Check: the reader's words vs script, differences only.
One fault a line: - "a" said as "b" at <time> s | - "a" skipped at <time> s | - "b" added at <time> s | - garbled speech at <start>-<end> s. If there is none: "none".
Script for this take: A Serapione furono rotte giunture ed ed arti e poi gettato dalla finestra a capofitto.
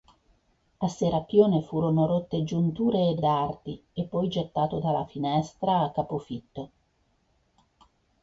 none